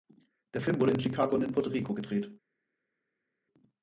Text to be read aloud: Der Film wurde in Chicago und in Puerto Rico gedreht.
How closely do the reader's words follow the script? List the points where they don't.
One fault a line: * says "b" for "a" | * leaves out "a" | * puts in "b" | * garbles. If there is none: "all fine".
all fine